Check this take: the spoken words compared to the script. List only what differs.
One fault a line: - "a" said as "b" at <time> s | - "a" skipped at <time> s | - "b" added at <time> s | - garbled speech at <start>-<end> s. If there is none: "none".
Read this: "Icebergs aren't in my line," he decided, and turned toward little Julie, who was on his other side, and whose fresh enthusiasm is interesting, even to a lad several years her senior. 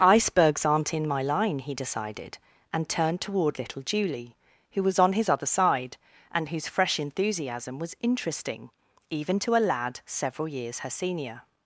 - "is" said as "was" at 7.8 s